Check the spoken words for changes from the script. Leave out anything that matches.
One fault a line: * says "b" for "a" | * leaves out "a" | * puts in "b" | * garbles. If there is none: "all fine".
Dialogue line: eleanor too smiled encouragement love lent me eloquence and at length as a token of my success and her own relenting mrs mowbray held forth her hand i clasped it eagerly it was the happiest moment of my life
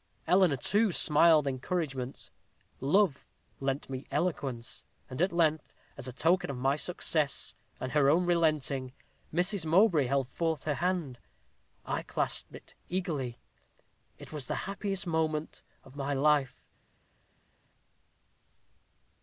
all fine